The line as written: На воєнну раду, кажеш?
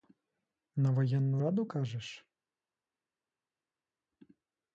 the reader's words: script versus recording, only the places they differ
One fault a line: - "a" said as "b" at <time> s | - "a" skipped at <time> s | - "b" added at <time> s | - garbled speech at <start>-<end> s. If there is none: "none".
none